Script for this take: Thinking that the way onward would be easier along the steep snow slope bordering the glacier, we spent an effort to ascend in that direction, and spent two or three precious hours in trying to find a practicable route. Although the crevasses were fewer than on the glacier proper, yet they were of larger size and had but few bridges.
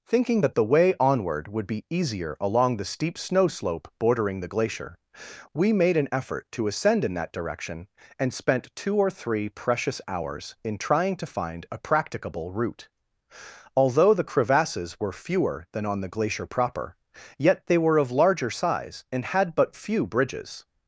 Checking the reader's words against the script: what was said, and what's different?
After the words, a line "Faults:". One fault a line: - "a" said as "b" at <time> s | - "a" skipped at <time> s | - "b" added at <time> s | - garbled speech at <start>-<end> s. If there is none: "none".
Thinking that the way onward would be easier along the steep snow slope bordering the glacier, we made an effort to ascend in that direction, and spent two or three precious hours in trying to find a practicable route. Although the crevasses were fewer than on the glacier proper, yet they were of larger size and had but few bridges.
Faults:
- "spent" said as "made" at 5.7 s